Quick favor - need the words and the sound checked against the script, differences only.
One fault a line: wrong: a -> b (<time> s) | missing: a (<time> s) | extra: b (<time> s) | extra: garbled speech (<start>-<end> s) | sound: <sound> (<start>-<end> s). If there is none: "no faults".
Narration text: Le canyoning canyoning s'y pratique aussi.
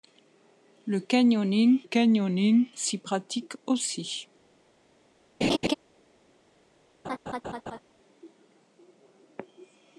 sound: laugh (5.4-5.7 s)
sound: laugh (7.0-7.8 s)